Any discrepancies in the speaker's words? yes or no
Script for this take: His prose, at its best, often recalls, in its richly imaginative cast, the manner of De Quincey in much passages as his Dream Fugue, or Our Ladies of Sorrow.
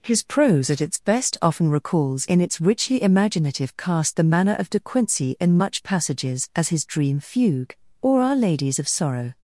no